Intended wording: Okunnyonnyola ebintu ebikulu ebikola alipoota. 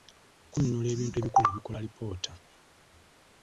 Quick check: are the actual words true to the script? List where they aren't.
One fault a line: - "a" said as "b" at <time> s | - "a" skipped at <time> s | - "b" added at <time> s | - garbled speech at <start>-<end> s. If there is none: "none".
none